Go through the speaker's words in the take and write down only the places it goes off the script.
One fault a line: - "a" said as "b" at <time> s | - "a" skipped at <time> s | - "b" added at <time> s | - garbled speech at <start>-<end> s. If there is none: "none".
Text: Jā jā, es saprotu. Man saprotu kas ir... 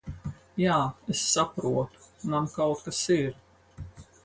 - "jā" skipped at 0.8 s
- "saprotu" said as "kaut" at 2.5 s